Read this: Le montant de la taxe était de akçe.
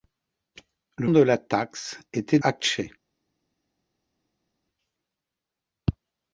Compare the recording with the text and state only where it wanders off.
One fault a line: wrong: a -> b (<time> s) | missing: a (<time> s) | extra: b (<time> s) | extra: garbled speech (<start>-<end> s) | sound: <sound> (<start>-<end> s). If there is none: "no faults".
missing: montant (1.1 s)
missing: de (2.4 s)